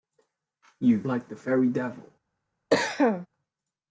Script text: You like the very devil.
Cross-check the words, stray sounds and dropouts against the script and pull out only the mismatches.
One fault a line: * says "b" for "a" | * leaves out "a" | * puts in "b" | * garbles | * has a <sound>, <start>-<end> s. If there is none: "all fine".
* has a cough, 2.7-3.3 s